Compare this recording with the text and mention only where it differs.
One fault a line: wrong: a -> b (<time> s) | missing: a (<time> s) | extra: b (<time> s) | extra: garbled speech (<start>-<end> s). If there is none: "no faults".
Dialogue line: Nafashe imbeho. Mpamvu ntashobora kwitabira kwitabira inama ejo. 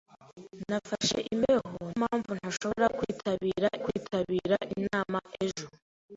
no faults